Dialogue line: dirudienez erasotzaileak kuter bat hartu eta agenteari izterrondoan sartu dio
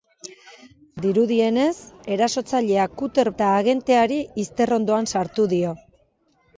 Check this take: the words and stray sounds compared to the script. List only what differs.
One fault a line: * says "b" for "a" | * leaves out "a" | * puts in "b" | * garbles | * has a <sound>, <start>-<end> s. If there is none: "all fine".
* leaves out "bat hartu"